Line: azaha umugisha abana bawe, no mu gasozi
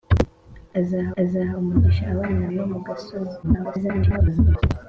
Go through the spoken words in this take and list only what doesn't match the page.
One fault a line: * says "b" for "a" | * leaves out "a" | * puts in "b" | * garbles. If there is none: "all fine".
* puts in "azaha"
* leaves out "bawe"
* garbles